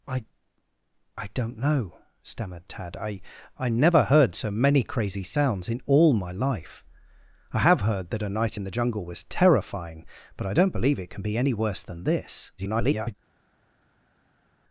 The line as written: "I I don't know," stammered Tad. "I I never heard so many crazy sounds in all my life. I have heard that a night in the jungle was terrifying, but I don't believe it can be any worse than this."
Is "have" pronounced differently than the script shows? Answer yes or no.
no